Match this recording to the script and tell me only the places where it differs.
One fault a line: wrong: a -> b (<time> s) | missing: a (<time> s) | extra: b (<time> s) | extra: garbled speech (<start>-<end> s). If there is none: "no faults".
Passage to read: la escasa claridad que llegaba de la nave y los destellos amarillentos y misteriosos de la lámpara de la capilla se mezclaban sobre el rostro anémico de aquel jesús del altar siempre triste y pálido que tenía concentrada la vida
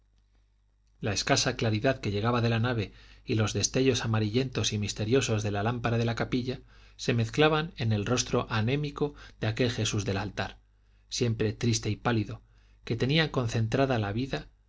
wrong: sobre -> en (7.8 s)